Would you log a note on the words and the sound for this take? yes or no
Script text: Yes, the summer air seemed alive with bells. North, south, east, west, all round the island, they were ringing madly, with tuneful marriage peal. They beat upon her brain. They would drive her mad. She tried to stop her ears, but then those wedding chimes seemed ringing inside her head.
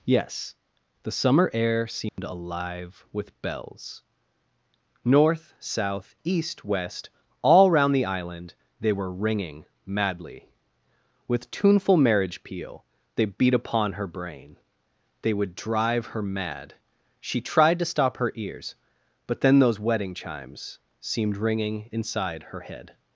yes